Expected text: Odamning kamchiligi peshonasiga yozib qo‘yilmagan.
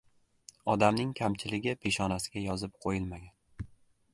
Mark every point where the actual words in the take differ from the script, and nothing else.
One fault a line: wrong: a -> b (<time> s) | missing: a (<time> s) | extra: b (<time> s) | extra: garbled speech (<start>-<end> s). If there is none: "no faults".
no faults